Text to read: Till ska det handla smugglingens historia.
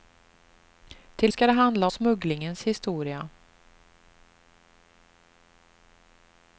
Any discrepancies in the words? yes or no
no